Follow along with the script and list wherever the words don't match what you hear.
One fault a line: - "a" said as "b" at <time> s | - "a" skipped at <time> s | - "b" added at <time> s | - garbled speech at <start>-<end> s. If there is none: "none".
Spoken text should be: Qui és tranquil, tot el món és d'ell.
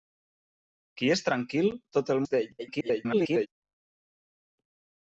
- "món" skipped at 2.3 s
- garbled speech at 2.6-3.5 s